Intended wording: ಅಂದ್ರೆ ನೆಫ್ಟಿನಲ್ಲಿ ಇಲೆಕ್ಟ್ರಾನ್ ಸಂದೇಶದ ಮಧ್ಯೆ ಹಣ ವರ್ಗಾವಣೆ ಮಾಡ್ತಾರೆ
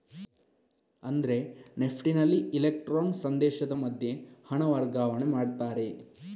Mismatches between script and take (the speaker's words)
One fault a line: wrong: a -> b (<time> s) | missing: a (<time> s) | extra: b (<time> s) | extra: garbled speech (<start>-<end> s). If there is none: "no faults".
no faults